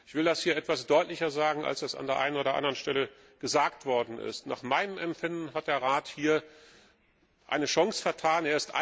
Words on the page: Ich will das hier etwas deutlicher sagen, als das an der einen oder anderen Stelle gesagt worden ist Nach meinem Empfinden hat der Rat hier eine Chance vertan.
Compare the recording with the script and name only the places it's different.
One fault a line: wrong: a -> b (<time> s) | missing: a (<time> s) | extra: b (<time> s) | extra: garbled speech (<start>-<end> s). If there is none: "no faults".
no faults